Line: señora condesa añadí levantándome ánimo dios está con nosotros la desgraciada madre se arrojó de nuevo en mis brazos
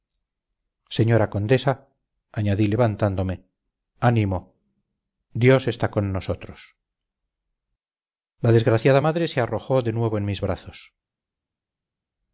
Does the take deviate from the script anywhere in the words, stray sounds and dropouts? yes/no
no